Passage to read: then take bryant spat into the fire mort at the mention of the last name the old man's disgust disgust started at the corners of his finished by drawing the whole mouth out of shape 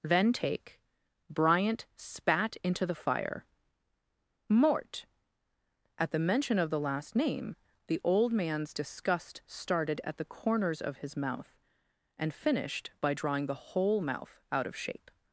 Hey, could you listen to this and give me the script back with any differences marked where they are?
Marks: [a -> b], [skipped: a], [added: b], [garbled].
then take bryant spat into the fire mort at the mention of the last name the old man's disgust [skipped: disgust] started at the corners of his [added: mouth and] finished by drawing the whole mouth out of shape